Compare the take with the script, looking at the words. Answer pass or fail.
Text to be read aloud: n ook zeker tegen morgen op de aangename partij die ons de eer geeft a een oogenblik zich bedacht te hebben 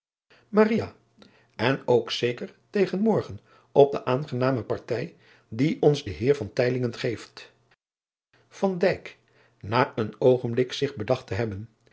pass